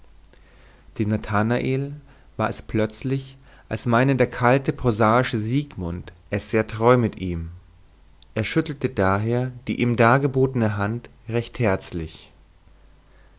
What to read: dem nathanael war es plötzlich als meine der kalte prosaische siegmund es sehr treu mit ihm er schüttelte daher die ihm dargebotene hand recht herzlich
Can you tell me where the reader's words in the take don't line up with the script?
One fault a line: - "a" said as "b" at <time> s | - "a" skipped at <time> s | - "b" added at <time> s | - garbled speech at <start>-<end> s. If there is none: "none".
none